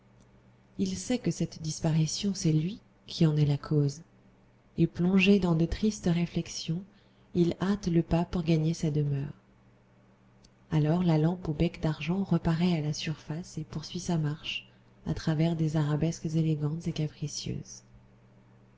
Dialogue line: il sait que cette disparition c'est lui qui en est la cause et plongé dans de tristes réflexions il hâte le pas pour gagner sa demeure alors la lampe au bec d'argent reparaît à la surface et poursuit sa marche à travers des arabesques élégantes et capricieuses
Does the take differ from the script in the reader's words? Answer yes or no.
no